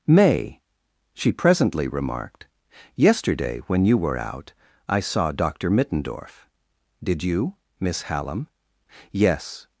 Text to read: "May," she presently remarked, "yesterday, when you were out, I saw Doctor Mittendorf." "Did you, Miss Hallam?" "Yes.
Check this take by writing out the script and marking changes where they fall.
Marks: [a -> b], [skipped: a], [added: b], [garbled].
"May," she presently remarked, "yesterday, when you were out, I saw Doctor Mittendorf." "Did you, Miss Hallam?" "Yes.